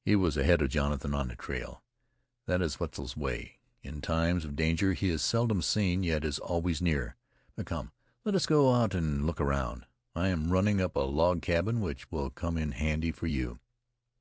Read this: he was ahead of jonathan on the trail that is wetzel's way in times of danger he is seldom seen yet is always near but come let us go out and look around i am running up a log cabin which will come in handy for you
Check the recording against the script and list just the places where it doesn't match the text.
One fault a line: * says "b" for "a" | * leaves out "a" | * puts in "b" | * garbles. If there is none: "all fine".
all fine